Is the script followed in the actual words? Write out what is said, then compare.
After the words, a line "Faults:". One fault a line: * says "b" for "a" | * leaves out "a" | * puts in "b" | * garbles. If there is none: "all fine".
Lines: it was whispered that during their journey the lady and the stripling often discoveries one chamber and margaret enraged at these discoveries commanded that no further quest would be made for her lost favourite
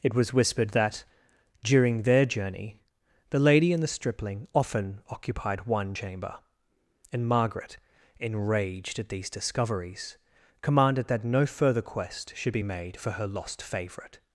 it was whispered that during their journey the lady and the stripling often occupied one chamber and margaret enraged at these discoveries commanded that no further quest should be made for her lost favourite
Faults:
* says "occupied" for "discoveries"
* says "should" for "would"